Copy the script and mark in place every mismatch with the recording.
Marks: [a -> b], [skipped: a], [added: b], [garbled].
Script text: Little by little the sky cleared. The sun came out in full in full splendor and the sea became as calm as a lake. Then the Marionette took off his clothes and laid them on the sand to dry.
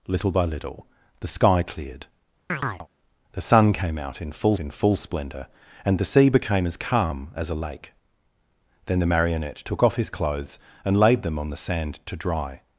Little by little the sky cleared. The sun came out in full in full splendor and the sea became as calm as a lake. Then the Marionette took off his clothes and laid them on the sand to dry.